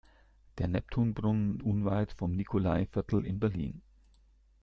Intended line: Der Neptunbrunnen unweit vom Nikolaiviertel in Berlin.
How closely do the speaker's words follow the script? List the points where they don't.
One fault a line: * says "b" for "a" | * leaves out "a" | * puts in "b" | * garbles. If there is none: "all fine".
all fine